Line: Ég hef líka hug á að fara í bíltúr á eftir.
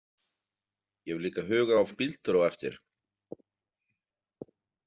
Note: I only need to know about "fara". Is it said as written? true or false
false